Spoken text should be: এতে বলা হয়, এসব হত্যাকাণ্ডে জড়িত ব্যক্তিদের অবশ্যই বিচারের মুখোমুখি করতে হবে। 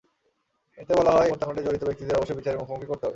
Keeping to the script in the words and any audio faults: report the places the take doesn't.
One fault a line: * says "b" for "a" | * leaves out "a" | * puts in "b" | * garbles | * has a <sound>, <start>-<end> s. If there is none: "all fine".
* leaves out "এসব"